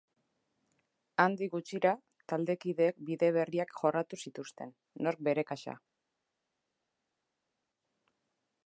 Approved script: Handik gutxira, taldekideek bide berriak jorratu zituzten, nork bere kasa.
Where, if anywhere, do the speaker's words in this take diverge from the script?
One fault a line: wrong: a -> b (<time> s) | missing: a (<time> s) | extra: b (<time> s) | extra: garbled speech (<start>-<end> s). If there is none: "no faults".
no faults